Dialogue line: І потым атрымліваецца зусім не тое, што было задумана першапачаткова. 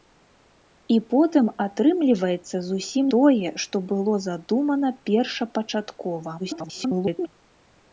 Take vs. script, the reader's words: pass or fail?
fail